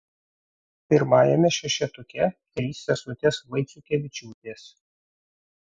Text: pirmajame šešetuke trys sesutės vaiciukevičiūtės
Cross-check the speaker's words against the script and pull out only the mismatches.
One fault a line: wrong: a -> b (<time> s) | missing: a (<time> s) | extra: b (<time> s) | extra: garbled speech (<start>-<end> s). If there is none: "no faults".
no faults